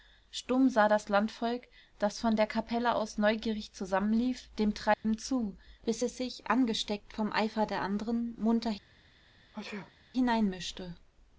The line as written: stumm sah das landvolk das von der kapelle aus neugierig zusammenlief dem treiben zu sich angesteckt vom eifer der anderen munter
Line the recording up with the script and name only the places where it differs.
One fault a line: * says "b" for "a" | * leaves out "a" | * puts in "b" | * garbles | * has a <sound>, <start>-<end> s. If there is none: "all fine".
* has a dropout, 4.9-5.0 s
* puts in "bis es"
* has a sneeze, 9.5-10.1 s